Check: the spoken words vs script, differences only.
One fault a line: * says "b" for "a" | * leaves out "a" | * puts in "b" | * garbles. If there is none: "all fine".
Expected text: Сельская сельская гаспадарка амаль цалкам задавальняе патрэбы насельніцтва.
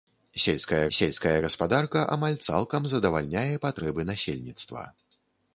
all fine